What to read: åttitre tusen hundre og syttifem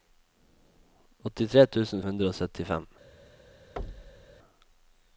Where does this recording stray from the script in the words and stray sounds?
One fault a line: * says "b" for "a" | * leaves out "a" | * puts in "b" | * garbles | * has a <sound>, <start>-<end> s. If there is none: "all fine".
* has a thud, 3.8-4.3 s